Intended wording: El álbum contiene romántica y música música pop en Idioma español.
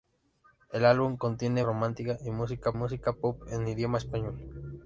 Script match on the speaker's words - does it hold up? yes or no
yes